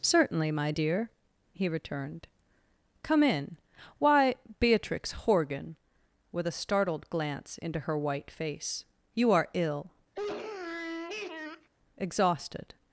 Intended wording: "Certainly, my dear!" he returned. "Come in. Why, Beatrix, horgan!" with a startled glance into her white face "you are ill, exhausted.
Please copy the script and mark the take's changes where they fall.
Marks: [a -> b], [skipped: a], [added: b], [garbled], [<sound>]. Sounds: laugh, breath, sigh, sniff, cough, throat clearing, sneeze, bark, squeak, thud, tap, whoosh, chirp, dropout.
"Certainly, my dear!" he returned. "Come in. Why, Beatrix, horgan!" with a startled glance into her white face "you are ill, [sniff] exhausted.